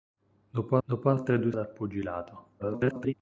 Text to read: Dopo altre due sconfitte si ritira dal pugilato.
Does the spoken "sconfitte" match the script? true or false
false